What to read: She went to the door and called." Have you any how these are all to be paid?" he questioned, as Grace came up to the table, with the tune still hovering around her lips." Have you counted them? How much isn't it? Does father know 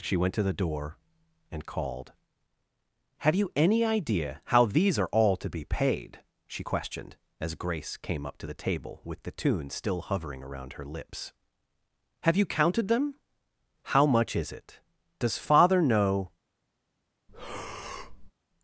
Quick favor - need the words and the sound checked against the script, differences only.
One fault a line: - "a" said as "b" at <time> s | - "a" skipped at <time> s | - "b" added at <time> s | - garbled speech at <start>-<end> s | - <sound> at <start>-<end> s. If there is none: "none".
- "idea" added at 3.9 s
- "he" said as "she" at 6.5 s
- "isn't" said as "is" at 14.3 s
- breath at 17.3-18.3 s